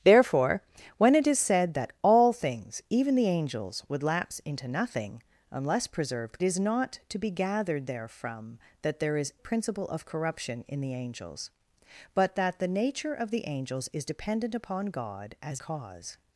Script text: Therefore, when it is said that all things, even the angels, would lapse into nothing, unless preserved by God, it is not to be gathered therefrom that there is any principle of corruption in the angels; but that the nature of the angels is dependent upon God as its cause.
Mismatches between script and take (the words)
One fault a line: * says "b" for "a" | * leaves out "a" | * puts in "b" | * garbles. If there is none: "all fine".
* leaves out "by God it"
* leaves out "any"
* leaves out "its"